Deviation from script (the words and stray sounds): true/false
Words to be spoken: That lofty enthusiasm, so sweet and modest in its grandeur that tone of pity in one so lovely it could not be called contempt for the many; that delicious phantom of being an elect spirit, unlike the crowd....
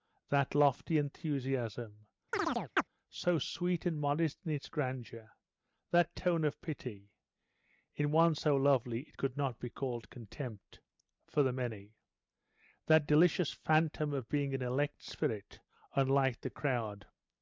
true